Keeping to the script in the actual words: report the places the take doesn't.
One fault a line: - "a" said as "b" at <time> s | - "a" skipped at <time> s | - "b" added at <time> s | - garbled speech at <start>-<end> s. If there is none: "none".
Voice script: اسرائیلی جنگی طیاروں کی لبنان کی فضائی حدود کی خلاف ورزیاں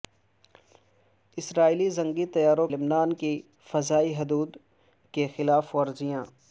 - "کی" skipped at 2.7 s